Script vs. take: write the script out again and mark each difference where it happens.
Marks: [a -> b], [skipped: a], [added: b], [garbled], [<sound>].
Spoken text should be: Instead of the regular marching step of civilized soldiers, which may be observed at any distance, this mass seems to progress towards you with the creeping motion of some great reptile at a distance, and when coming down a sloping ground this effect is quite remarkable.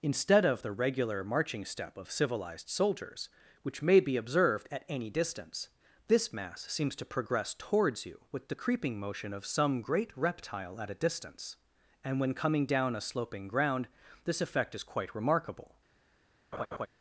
Instead of the regular marching step of civilized soldiers, which may be observed at any distance, this mass seems to progress towards you with the creeping motion of some great reptile at a distance, and when coming down a sloping ground this effect is quite remarkable. [laugh]